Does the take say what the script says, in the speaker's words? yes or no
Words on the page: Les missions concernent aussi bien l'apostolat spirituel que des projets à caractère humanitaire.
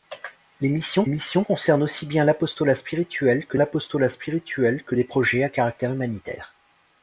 no